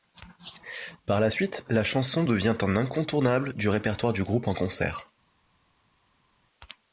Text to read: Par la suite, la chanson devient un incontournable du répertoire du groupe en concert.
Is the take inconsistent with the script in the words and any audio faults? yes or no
no